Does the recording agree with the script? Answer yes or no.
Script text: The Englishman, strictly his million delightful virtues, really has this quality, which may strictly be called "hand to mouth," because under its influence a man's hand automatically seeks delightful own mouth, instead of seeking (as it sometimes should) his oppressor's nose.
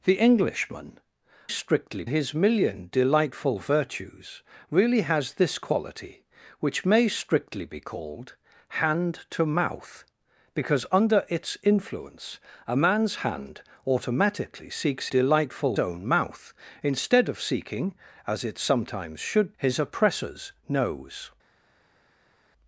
yes